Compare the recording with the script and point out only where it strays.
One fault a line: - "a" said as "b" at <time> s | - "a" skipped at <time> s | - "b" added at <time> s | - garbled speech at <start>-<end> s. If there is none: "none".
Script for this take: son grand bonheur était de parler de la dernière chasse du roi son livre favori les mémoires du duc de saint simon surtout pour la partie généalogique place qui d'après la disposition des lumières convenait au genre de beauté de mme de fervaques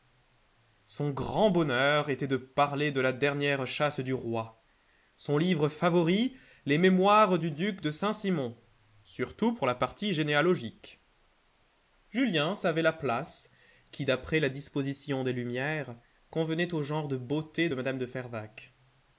- "julien savait la" added at 12.1 s